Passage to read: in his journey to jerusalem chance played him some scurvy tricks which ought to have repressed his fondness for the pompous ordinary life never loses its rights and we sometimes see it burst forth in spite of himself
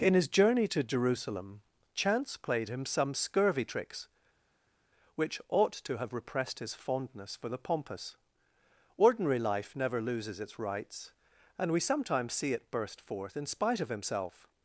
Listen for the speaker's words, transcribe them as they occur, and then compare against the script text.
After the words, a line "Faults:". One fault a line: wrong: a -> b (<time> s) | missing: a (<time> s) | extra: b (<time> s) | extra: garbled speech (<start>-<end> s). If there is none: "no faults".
in his journey to jerusalem chance played him some scurvy tricks which ought to have repressed his fondness for the pompous ordinary life never loses its rights and we sometimes see it burst forth in spite of himself
Faults:
no faults